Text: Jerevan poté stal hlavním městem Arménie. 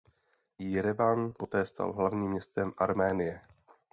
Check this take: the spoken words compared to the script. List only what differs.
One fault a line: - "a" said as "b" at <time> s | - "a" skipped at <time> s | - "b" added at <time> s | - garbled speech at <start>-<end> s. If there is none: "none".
none